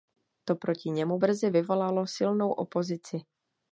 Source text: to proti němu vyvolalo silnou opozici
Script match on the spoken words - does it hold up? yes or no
no